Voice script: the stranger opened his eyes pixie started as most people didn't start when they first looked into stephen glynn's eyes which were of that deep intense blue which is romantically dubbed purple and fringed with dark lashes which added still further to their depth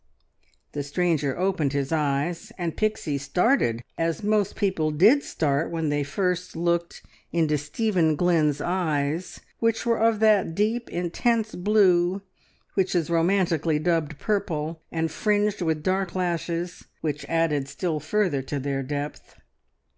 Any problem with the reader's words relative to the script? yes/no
yes